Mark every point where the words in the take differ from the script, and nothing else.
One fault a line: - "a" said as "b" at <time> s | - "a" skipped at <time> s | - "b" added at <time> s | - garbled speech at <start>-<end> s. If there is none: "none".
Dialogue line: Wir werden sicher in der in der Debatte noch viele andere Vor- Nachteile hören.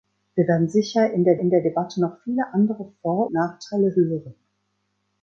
none